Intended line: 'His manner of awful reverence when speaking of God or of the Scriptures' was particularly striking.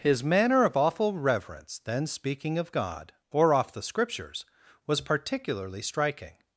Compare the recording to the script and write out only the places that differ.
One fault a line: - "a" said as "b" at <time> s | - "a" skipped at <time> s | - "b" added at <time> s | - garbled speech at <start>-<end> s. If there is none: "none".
- "when" said as "then" at 1.8 s
- "of" said as "off" at 3.5 s